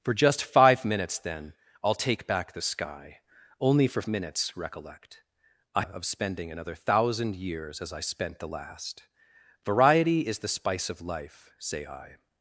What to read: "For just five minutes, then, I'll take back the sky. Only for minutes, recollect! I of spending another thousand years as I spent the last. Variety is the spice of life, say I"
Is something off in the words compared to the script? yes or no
no